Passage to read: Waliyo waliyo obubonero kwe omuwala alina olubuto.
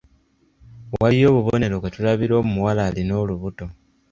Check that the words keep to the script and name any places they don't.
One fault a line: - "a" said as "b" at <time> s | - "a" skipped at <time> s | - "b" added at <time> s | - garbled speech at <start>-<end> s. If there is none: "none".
- "waliyo" skipped at 1.3 s
- "tulabira" added at 1.9 s